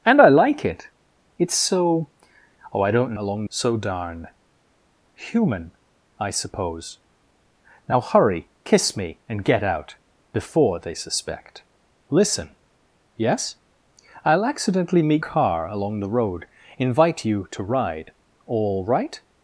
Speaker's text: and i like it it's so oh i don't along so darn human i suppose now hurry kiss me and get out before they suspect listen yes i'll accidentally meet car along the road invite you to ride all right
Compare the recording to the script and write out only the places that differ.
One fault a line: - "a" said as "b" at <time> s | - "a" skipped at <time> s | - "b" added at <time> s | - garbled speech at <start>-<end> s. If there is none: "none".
none